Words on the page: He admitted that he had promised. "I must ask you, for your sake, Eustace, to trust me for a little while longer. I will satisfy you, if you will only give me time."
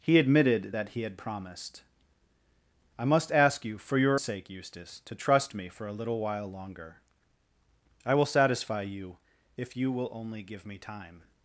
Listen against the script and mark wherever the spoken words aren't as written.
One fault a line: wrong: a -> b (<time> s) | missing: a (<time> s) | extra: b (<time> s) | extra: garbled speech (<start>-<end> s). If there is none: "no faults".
no faults